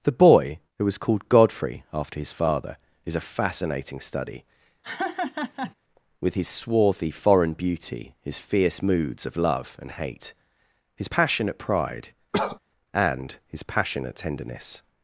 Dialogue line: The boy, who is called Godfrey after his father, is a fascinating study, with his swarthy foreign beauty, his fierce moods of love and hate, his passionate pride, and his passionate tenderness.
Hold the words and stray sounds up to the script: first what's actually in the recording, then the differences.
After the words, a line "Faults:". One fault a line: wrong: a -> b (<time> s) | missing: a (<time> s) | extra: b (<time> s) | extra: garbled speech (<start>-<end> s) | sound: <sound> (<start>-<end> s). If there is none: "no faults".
The boy, who was called Godfrey after his father, is a fascinating study, with his swarthy foreign beauty, his fierce moods of love and hate, his passionate pride, and his passionate tenderness.
Faults:
wrong: is -> was (0.8 s)
sound: laugh (4.8-5.7 s)
sound: cough (12.3-12.6 s)